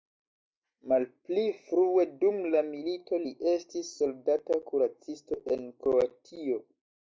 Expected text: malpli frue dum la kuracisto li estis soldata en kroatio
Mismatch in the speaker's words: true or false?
true